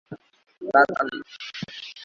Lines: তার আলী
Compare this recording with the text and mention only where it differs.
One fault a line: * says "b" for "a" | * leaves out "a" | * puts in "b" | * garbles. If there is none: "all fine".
all fine